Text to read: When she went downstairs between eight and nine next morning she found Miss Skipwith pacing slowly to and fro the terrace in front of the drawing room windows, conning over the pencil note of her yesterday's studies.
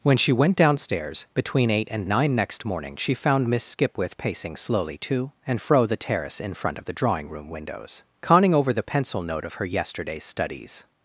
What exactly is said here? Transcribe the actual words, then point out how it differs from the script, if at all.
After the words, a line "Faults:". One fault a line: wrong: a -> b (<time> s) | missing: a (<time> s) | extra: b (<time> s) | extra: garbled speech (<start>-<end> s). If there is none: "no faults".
When she went downstairs between eight and nine next morning she found Miss Skipwith pacing slowly to and fro the terrace in front of the drawing room windows, conning over the pencil note of her yesterday's studies.
Faults:
no faults